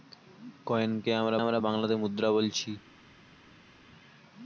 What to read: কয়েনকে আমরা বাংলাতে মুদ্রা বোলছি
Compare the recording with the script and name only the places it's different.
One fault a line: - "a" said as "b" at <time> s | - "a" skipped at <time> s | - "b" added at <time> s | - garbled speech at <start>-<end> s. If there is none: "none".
- "আমরা" added at 1.4 s